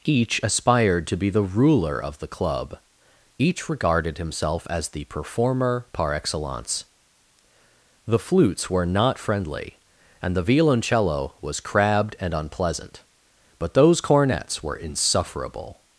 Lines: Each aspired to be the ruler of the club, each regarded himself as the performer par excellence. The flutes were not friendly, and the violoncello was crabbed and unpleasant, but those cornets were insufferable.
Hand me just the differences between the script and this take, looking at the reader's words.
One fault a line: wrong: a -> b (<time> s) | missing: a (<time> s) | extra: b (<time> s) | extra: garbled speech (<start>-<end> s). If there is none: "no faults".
no faults